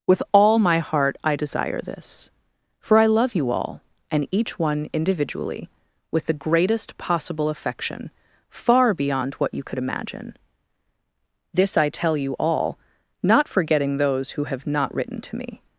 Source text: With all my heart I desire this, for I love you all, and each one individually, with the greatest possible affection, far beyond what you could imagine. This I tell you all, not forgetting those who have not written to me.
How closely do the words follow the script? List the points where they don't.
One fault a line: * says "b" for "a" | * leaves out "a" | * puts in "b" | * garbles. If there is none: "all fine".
all fine